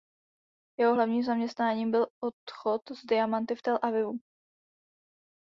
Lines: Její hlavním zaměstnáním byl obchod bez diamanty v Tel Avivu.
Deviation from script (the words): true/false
true